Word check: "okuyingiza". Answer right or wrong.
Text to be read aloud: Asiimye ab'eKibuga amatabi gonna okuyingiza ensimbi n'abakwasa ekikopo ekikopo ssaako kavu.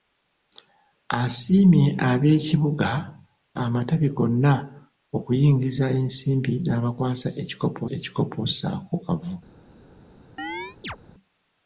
right